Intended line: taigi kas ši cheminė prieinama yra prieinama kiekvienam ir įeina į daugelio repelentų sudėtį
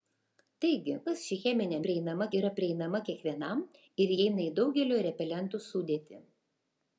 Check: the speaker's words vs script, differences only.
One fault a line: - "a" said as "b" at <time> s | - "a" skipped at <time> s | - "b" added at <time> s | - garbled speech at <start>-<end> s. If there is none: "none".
none